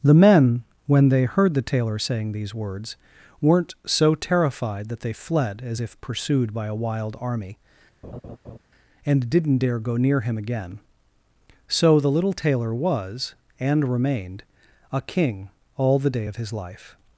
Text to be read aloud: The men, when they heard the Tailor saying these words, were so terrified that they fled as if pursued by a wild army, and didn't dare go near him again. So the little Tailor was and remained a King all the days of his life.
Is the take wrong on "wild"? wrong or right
right